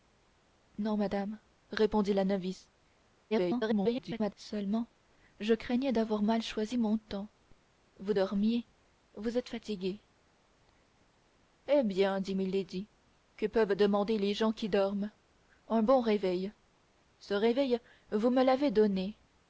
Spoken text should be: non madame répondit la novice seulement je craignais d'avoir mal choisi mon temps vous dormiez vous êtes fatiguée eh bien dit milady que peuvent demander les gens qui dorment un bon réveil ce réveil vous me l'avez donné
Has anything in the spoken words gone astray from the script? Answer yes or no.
yes